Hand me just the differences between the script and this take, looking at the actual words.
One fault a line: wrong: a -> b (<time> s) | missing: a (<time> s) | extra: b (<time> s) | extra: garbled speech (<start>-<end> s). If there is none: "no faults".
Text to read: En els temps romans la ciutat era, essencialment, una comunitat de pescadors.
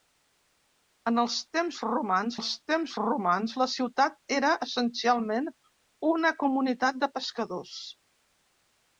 extra: els temps romans (2.4 s)